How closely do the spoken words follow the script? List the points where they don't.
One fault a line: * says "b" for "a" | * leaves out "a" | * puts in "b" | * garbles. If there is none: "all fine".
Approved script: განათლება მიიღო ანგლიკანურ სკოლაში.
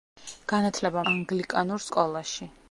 * leaves out "მიიღო"